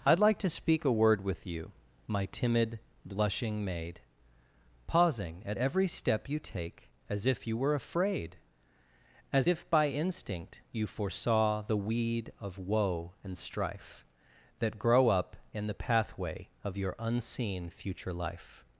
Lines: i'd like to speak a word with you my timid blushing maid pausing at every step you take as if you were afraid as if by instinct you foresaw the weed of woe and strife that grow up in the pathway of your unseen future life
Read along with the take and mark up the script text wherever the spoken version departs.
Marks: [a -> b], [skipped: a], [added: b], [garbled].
i'd like to speak a word with you my timid blushing maid pausing at every step you take as if you were afraid as if by instinct you foresaw the weed of woe and strife that grow up in the pathway of your unseen future life